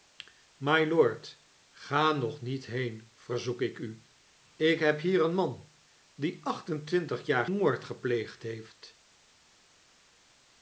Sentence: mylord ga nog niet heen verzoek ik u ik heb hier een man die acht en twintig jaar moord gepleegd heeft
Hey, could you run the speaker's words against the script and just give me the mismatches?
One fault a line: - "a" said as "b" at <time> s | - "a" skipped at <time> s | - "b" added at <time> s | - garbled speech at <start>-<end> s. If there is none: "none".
none